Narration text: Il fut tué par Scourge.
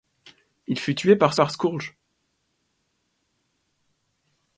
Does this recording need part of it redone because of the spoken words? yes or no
yes